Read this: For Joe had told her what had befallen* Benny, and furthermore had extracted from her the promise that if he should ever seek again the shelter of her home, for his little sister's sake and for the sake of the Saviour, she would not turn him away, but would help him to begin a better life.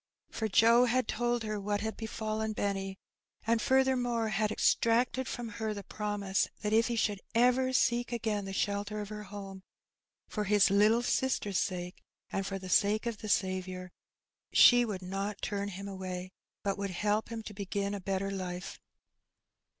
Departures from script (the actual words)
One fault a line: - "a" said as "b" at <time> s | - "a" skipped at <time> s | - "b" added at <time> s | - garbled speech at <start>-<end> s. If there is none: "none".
none